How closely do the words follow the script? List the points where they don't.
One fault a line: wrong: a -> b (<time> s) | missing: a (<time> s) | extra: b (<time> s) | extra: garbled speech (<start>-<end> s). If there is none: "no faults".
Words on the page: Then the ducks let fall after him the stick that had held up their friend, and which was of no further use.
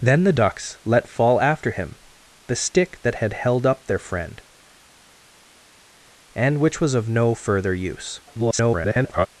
extra: garbled speech (8.3-9.3 s)